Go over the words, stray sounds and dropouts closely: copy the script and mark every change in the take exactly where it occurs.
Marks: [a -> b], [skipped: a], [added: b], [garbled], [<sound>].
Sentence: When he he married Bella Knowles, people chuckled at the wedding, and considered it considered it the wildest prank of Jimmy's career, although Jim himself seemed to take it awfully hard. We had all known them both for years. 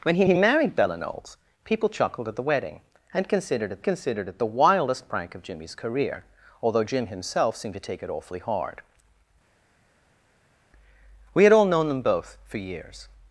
When he he married Bella Knowles, people chuckled at the wedding, and considered it considered it the wildest prank of Jimmy's career, although Jim himself seemed to take it awfully hard. We had all known them both for years.